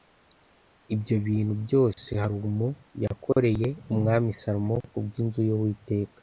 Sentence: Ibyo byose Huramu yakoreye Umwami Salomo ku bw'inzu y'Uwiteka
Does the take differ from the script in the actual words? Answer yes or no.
yes